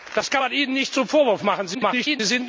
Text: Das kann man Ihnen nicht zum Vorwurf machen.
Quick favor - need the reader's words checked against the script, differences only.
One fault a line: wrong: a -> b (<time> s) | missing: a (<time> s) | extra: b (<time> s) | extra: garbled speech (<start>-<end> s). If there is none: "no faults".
extra: garbled speech (1.7-2.2 s)